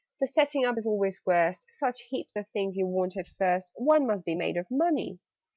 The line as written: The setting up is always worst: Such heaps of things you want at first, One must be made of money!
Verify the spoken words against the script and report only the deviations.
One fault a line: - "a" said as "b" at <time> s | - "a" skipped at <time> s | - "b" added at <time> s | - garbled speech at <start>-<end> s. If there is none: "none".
none